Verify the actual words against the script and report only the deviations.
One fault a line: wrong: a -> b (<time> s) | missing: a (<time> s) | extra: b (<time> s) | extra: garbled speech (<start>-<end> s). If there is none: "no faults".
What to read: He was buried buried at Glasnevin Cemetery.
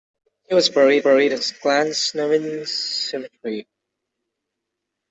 no faults